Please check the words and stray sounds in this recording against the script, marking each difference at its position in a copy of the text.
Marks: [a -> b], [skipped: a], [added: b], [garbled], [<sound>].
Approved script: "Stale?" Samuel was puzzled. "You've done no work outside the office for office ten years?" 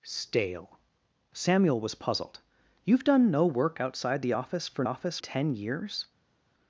"Stale?" Samuel was puzzled. "You've done no work outside the office for office ten years?"